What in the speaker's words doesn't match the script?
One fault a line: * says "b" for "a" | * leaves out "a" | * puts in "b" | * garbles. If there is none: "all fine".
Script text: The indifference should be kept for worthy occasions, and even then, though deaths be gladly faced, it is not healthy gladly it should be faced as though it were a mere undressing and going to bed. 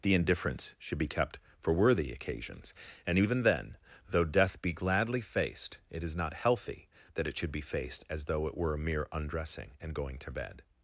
* says "death" for "deaths"
* says "that" for "gladly"